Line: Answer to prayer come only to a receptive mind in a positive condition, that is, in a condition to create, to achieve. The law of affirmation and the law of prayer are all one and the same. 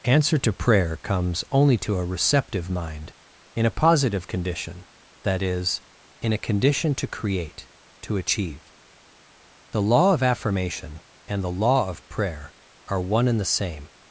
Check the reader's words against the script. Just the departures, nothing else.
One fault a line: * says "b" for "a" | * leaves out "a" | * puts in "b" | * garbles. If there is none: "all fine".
* says "comes" for "come"
* leaves out "all"